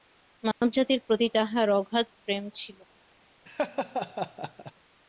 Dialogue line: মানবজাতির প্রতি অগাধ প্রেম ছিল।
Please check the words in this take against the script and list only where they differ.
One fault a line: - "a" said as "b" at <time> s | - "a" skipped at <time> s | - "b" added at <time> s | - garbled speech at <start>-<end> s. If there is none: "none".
- "তাঁহার" added at 1.3 s